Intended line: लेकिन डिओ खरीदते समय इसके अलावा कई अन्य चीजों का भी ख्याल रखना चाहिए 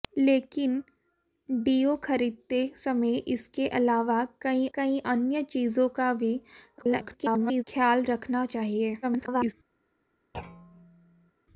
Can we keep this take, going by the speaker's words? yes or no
no